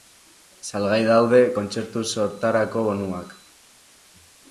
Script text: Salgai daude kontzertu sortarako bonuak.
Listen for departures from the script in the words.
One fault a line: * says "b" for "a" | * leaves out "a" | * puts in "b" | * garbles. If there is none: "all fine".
all fine